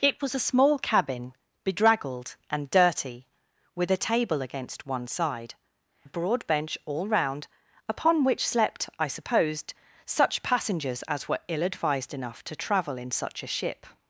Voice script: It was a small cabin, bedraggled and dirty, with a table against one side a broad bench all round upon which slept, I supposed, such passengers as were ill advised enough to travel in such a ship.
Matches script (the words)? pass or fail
pass